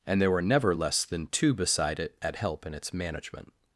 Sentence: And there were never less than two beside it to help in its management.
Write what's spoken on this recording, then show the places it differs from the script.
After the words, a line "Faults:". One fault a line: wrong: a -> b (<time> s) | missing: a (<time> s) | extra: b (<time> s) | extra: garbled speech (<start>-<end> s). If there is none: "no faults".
And there were never less than two beside it at help in its management.
Faults:
wrong: to -> at (2.2 s)